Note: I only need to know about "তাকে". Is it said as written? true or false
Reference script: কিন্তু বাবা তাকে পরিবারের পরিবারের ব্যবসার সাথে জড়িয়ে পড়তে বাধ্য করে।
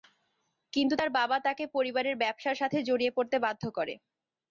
true